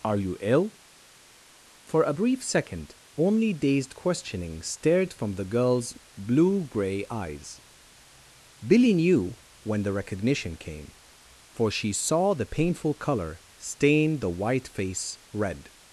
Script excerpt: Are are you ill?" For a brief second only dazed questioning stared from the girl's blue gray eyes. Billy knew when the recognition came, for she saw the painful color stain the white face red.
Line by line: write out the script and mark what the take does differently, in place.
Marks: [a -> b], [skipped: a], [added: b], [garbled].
Are [skipped: are] you ill?" For a brief second only dazed questioning stared from the girl's blue gray eyes. Billy knew when the recognition came, for she saw the painful color stain the white face red.